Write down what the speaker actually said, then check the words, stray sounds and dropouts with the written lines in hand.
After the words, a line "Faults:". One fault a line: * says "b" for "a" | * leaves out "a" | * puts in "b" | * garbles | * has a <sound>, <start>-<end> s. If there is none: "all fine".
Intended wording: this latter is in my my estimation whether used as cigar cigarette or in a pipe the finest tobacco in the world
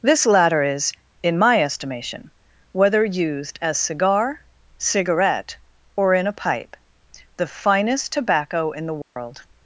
this latter is in my estimation whether used as cigar cigarette or in a pipe the finest tobacco in the world
Faults:
* leaves out "my"
* has a dropout, 9.0-9.2 s